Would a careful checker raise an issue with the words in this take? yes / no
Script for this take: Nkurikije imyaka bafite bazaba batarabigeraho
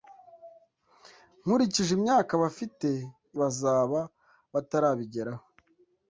no